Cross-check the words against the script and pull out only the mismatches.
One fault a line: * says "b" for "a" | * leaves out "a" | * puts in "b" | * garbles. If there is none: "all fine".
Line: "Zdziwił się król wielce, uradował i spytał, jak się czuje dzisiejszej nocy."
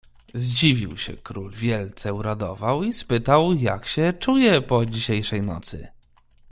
* puts in "po"